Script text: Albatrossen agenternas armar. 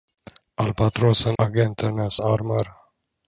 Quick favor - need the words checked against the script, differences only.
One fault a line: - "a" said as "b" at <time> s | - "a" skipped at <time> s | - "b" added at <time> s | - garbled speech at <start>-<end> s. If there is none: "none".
none